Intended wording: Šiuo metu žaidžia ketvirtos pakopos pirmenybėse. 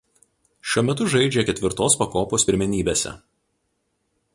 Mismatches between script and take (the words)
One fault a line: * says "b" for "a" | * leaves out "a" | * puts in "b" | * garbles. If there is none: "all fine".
all fine